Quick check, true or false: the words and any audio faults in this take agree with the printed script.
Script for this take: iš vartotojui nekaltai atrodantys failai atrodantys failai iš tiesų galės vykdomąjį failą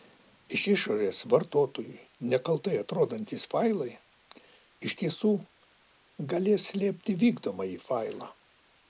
false